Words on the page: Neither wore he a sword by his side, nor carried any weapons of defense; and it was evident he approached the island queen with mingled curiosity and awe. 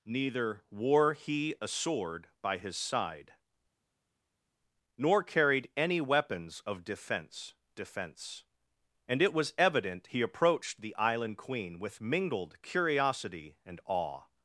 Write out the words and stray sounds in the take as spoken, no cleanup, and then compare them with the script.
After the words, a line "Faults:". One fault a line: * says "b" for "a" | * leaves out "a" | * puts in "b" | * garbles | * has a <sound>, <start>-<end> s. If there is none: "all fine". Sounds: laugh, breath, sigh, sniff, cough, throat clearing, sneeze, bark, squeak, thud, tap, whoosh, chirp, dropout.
Neither wore he a sword by his side, nor carried any weapons of defense defense; and it was evident he approached the island queen with mingled curiosity and awe.
Faults:
* puts in "defense"